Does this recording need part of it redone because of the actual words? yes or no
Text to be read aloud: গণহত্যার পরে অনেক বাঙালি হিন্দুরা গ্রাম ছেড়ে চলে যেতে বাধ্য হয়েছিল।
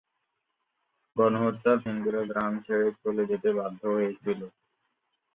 yes